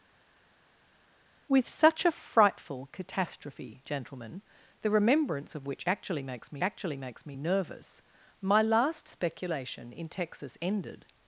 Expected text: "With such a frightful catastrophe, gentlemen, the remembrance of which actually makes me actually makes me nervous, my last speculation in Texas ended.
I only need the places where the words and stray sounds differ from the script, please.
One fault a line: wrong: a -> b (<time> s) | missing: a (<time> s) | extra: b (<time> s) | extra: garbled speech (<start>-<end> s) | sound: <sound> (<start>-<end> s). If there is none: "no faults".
no faults